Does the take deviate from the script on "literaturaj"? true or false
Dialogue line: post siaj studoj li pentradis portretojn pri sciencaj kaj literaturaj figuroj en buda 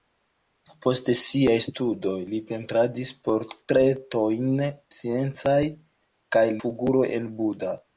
true